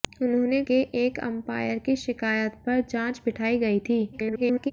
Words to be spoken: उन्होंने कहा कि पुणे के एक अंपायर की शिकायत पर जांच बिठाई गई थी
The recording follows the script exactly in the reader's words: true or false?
false